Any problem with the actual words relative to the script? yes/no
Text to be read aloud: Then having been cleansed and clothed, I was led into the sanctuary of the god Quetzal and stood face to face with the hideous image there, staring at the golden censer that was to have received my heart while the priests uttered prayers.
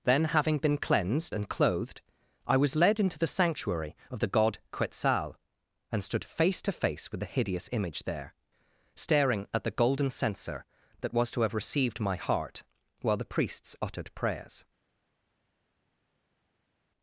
no